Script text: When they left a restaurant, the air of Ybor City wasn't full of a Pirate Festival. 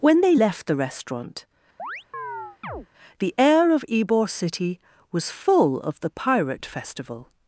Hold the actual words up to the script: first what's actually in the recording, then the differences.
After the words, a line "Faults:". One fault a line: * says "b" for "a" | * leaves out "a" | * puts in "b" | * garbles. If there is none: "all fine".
When they left the restaurant, the air of Ybor City was full of the Pirate Festival.
Faults:
* says "the" for "a"
* says "was" for "wasn't"
* says "the" for "a"